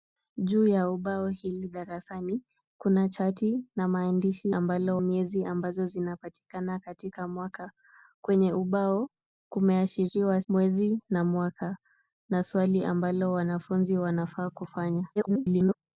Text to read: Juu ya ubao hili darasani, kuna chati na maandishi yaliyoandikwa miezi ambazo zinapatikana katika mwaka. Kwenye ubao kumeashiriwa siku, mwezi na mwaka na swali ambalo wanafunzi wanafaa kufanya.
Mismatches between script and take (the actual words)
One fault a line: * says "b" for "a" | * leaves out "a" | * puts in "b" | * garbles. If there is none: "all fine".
* says "ambalo" for "yaliyoandikwa"
* leaves out "siku"
* garbles